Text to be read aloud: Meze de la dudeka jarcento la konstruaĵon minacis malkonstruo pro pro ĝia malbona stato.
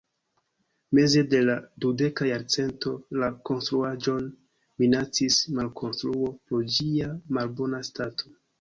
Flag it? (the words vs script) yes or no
yes